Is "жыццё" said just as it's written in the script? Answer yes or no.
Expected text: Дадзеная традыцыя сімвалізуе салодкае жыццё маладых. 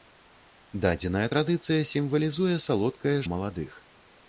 no